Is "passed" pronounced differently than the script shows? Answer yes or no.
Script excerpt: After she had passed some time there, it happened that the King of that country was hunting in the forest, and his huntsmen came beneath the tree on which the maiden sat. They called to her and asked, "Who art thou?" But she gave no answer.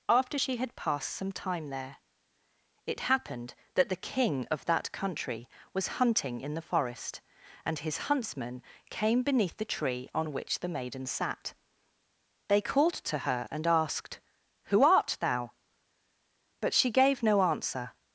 no